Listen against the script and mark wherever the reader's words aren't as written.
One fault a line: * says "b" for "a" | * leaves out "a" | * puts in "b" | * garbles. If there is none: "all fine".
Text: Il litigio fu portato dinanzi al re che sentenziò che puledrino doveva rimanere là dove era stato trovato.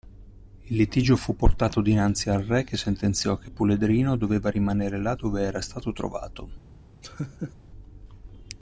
all fine